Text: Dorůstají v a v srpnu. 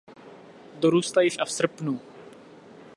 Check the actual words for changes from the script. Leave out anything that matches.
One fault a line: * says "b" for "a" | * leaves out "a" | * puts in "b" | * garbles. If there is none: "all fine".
all fine